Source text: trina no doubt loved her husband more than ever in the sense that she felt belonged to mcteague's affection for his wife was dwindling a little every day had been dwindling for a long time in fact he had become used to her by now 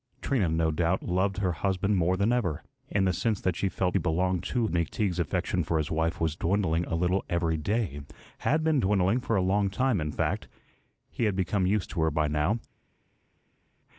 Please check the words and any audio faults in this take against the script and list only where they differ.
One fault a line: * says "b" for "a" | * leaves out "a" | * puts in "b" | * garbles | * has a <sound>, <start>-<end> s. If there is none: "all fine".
all fine